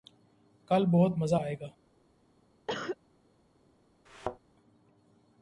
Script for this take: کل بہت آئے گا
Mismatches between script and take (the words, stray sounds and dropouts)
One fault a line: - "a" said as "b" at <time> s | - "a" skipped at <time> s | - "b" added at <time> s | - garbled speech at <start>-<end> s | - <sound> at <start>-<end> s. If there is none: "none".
- "مزہ" added at 1.2 s
- cough at 2.7-3.0 s
- thud at 4.1-4.4 s